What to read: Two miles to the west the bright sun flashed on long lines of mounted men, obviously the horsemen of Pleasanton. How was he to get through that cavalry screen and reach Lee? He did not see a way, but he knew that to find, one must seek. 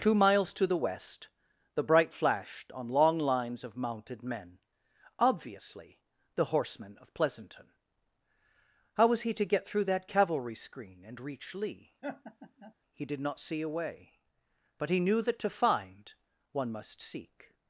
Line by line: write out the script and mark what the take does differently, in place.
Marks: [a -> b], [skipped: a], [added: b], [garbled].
Two miles to the west the bright [skipped: sun] flashed on long lines of mounted men, obviously the horsemen of Pleasanton. How was he to get through that cavalry screen and reach Lee? He did not see a way, but he knew that to find, one must seek.